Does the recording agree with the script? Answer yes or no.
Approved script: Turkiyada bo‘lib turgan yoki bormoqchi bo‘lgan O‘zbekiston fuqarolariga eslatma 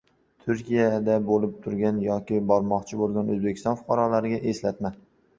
yes